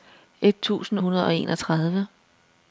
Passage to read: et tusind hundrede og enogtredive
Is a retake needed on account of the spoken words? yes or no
no